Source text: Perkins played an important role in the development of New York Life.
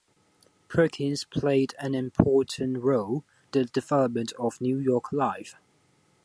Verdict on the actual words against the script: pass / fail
fail